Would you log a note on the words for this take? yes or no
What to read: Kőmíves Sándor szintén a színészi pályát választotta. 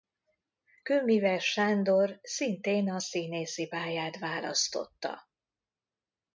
no